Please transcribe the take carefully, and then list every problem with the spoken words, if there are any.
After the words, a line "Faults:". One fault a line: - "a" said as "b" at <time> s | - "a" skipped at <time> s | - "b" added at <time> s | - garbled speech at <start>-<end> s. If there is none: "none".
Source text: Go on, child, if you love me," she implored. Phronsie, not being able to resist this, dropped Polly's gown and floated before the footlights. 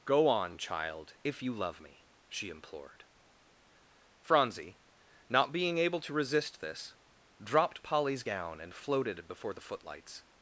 Go on, child, if you love me," she implored. Phronsie, not being able to resist this, dropped Polly's gown and floated before the footlights.
Faults:
none